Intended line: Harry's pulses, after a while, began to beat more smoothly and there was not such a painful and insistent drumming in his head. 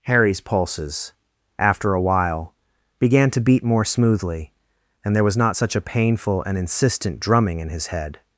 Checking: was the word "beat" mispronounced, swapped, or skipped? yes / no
no